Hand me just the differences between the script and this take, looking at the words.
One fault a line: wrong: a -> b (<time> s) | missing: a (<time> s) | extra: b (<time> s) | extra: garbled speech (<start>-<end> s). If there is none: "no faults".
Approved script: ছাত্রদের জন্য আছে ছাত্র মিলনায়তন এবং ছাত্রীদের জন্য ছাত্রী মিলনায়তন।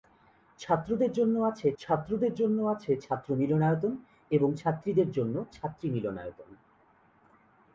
extra: ছাত্রদের জন্য আছে (1.8 s)